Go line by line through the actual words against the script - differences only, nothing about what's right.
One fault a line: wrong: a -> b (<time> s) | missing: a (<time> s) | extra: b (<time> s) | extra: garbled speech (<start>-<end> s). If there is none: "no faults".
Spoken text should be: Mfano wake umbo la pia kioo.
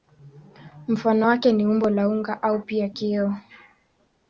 extra: ni (1.5 s)
extra: unga au (2.1 s)